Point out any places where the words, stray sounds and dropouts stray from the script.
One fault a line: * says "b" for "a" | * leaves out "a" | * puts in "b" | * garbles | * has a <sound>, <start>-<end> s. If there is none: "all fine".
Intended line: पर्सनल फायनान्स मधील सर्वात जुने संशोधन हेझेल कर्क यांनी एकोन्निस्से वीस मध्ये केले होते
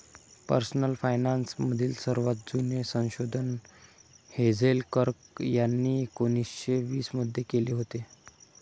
all fine